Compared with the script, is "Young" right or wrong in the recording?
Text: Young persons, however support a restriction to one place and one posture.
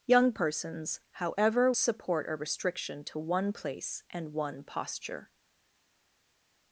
right